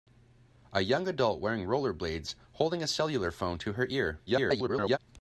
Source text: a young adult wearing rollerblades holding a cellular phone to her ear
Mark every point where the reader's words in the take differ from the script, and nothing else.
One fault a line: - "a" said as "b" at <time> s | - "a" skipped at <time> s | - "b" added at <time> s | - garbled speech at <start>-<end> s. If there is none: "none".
- garbled speech at 4.3-5.0 s